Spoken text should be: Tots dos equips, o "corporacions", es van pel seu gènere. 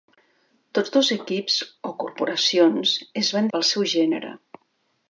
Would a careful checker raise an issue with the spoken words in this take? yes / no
no